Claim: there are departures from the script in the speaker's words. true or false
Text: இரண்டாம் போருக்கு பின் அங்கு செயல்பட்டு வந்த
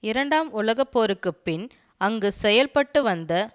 true